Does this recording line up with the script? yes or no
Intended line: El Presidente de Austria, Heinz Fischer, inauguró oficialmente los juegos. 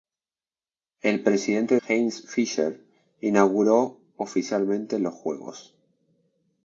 no